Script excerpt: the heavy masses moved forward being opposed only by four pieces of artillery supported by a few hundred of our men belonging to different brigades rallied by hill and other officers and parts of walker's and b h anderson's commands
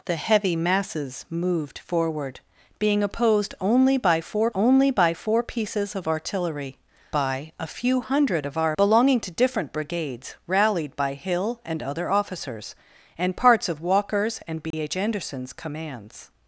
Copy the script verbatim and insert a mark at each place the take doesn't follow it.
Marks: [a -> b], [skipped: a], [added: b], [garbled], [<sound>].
the heavy masses moved forward being opposed only by four [added: only by four] pieces of artillery [skipped: supported] by a few hundred of our [skipped: men] belonging to different brigades rallied by hill and other officers and parts of walker's and b [dropout] h anderson's commands